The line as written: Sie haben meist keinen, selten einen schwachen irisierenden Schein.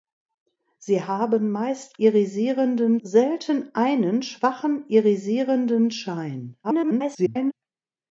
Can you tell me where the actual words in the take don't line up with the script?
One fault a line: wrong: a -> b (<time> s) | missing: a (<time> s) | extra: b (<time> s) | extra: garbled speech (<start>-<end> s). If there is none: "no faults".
wrong: keinen -> irisierenden (2.0 s)
extra: garbled speech (6.6-7.5 s)